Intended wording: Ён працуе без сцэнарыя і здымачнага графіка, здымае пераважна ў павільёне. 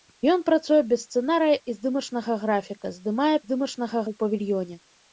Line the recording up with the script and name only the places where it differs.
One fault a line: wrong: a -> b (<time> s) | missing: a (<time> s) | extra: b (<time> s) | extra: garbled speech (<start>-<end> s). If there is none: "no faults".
wrong: пераважна -> здымачнага (3.4 s)